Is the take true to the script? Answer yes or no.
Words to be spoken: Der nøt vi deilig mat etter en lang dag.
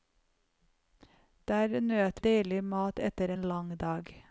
no